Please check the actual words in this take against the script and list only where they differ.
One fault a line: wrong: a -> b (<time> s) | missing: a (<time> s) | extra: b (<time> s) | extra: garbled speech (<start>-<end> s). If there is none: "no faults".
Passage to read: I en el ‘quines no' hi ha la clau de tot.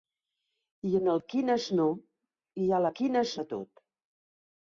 wrong: clau -> quines (3.0 s)